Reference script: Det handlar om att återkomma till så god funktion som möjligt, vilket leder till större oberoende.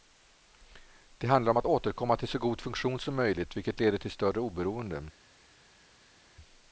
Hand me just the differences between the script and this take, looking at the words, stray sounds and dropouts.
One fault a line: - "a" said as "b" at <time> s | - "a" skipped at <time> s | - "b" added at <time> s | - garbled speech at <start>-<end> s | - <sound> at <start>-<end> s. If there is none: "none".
none